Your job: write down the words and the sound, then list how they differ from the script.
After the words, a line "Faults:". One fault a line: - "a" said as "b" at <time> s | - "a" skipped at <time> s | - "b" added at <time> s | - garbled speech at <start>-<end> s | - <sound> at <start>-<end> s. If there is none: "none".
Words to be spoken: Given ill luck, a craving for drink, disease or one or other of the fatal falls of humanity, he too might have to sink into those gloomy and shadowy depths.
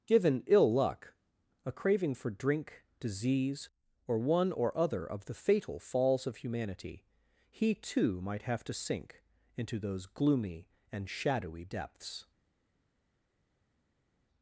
Given ill luck, a craving for drink, disease or one or other of the fatal falls of humanity, he too might have to sink into those gloomy and shadowy depths.
Faults:
none